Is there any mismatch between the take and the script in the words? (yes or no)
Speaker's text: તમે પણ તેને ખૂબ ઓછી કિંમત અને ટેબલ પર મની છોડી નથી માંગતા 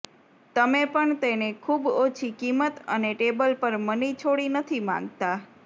no